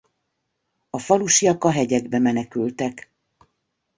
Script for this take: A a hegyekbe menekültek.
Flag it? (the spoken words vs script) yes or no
yes